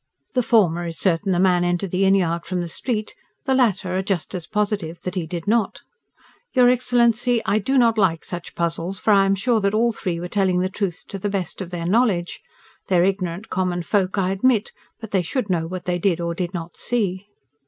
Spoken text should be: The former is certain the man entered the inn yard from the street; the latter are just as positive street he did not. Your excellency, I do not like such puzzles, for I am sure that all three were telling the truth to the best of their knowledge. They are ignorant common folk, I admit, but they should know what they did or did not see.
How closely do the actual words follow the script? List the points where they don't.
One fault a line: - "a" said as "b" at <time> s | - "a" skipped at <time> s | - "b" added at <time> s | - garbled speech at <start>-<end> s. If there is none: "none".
- "street" said as "that" at 5.0 s